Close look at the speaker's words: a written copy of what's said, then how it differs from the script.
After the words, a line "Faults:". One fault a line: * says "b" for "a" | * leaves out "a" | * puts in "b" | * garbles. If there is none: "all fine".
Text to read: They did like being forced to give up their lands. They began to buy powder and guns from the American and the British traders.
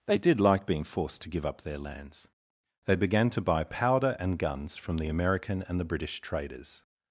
They did like being forced to give up their lands. They began to buy powder and guns from the American and the British traders.
Faults:
all fine